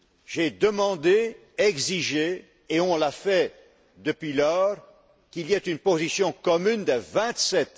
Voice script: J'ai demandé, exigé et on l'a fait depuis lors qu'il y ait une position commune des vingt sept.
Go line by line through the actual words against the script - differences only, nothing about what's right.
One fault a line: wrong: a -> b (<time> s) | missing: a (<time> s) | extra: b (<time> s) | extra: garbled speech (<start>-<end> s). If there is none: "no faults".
no faults